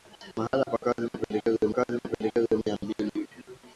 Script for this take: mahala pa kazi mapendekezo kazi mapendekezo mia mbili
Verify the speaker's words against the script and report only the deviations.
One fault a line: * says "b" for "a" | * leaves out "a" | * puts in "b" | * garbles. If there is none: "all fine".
all fine